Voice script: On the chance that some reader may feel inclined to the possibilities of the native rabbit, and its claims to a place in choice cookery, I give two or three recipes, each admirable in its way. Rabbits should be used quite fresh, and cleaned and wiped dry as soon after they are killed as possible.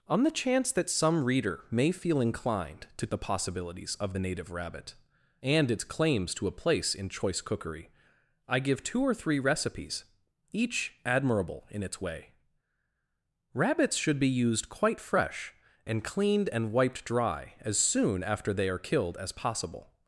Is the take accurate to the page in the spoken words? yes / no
yes